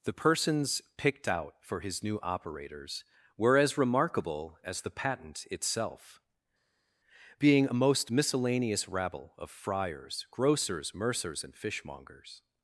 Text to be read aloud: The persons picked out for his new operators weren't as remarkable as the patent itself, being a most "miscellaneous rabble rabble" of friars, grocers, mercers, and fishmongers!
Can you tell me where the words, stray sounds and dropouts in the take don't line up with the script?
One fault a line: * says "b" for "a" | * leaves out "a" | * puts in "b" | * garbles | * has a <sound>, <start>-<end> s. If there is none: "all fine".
* says "were" for "weren't"
* leaves out "rabble"